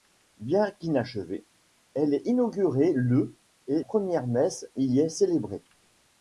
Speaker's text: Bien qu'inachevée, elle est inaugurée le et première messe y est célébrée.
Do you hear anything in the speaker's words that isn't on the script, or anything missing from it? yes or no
no